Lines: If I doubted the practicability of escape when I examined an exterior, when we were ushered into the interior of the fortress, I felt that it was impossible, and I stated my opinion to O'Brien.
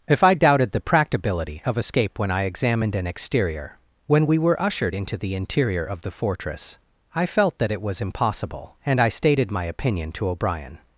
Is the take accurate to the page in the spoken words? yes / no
yes